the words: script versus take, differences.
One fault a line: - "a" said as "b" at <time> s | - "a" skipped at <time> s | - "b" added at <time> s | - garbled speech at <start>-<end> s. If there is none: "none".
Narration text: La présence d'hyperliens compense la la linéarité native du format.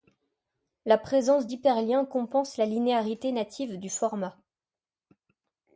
- "la" skipped at 2.7 s